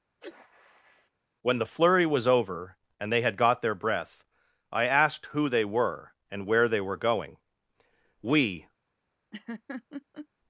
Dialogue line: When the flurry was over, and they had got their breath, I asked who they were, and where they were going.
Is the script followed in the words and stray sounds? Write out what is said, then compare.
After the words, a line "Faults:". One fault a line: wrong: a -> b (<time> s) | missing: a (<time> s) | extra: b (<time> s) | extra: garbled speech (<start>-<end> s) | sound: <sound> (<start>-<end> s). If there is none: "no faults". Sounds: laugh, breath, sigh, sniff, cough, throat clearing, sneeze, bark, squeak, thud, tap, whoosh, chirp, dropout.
When the flurry was over, and they had got their breath, I asked who they were, and where they were going. "We
Faults:
sound: sneeze (0.2-1.1 s)
extra: We (8.2 s)
sound: laugh (9.3-10.3 s)